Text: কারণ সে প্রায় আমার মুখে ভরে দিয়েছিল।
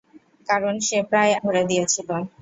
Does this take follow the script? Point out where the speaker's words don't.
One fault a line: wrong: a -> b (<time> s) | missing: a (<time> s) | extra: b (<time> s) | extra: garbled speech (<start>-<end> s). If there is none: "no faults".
missing: আমার মুখে (1.3 s)